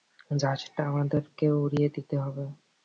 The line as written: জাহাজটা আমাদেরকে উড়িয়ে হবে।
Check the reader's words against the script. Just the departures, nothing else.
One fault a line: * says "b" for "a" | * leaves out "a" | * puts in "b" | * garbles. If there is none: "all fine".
* puts in "দিতে"